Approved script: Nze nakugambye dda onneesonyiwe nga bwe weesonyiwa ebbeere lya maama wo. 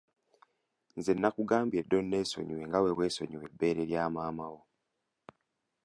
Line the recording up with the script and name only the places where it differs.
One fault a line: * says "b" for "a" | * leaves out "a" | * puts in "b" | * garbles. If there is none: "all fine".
all fine